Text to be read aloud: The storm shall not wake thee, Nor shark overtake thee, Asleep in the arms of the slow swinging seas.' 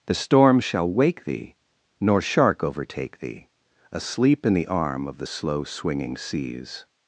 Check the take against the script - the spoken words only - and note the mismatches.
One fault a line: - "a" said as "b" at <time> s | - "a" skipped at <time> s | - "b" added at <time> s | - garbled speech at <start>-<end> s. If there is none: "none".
- "not" skipped at 0.9 s
- "arms" said as "arm" at 4.7 s